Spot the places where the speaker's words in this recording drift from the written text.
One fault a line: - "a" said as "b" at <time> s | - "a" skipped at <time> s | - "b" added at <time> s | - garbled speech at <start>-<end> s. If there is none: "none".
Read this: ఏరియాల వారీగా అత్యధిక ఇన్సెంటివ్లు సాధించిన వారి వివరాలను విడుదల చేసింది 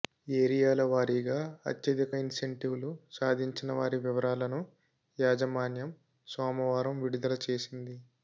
- "యాజమాన్యం సోమవారం" added at 5.2 s